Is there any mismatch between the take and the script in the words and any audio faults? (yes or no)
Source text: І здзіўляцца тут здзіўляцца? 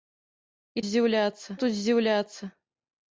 no